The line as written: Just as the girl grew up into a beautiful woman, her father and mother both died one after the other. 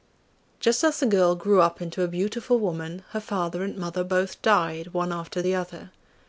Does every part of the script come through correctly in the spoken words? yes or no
yes